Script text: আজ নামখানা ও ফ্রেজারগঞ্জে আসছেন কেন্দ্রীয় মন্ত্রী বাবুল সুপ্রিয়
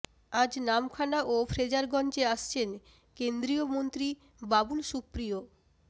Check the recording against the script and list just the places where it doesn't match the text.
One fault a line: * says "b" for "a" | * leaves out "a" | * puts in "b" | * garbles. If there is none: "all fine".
all fine